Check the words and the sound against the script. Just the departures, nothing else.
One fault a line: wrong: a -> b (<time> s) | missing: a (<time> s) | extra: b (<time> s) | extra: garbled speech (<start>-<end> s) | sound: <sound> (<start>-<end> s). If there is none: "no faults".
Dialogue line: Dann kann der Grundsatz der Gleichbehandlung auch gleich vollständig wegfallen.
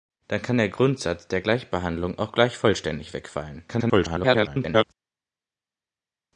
extra: garbled speech (3.7-4.8 s)